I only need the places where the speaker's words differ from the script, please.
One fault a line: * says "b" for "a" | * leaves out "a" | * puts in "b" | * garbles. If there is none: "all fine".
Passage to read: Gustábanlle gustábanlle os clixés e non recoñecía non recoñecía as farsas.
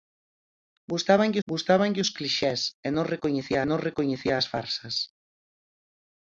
all fine